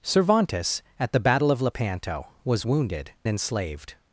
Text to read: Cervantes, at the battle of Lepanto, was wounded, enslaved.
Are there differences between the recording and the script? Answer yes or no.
no